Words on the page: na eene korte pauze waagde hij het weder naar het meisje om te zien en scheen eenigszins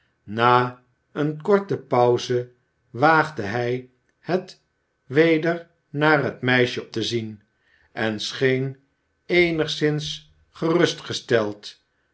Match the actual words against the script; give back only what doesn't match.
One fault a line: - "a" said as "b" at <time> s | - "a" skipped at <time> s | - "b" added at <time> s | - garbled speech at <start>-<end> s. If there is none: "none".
- "om" skipped at 6.9 s